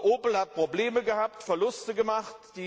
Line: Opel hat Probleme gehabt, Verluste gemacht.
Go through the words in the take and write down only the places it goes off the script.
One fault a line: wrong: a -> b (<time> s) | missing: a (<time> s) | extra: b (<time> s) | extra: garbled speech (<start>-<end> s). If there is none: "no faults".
no faults